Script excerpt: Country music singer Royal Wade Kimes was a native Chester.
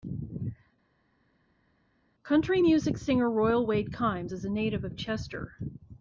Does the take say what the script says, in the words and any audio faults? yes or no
no